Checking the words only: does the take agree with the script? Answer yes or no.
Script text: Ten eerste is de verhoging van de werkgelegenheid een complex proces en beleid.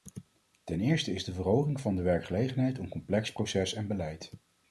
yes